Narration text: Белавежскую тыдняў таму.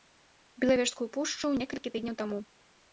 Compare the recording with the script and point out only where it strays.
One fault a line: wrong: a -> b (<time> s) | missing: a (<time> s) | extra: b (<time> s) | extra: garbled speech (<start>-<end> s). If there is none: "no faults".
extra: пушчу некалькі (1.2 s)